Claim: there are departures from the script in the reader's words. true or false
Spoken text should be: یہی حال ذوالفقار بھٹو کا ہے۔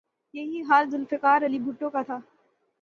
true